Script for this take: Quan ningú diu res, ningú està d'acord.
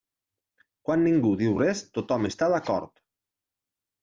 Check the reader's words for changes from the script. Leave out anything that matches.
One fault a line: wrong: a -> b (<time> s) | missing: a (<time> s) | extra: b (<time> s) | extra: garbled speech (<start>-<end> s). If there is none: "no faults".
wrong: ningú -> tothom (2.0 s)